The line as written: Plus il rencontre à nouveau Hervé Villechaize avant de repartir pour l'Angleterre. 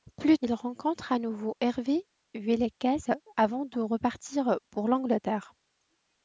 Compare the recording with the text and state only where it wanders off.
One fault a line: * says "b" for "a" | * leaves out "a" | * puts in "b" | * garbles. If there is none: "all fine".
all fine